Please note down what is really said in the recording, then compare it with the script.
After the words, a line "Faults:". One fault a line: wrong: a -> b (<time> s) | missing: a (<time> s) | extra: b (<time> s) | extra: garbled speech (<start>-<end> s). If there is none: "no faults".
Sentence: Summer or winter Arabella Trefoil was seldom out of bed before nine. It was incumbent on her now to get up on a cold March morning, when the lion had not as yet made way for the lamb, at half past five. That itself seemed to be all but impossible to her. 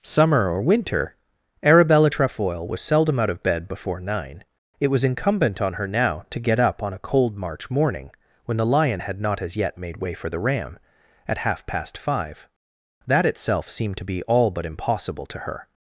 Summer or winter Arabella Trefoil was seldom out of bed before nine. It was incumbent on her now to get up on a cold March morning, when the lion had not as yet made way for the ram, at half past five. That itself seemed to be all but impossible to her.
Faults:
wrong: lamb -> ram (10.4 s)